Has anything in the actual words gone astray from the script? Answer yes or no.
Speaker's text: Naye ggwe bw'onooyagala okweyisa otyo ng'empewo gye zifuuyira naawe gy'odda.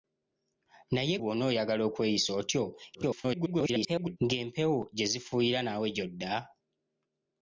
yes